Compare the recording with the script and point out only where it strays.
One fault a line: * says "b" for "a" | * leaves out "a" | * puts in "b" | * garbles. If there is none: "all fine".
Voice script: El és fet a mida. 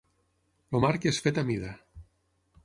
* puts in "marc"